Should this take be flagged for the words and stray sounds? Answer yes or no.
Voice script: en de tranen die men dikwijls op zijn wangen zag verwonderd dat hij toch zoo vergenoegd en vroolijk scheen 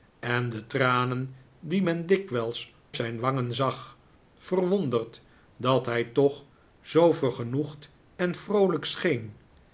yes